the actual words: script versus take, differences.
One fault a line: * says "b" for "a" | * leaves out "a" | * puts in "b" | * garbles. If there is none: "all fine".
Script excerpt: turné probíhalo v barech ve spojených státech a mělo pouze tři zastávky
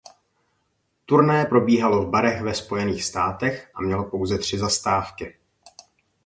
all fine